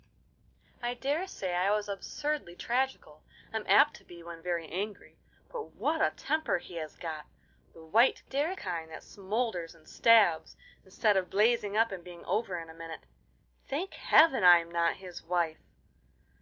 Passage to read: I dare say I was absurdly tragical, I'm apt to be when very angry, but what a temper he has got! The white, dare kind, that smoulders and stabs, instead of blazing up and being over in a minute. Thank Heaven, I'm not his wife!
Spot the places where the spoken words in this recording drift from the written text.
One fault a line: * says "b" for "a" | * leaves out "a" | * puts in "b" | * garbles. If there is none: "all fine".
all fine